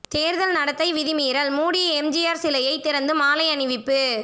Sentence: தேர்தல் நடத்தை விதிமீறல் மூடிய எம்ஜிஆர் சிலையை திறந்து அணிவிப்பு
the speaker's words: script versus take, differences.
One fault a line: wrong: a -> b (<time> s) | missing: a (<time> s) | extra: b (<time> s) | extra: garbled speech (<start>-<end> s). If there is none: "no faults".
extra: மாலை (3.1 s)